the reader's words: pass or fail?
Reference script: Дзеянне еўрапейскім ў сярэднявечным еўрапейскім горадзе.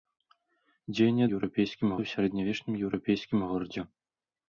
pass